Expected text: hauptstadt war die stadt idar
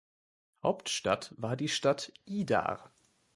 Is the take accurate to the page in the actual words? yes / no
yes